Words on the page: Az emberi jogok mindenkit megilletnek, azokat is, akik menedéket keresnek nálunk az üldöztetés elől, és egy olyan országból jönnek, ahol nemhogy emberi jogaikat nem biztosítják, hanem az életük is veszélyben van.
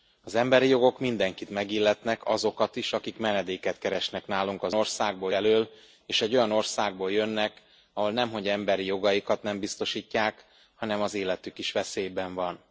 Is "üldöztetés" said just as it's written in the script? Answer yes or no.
no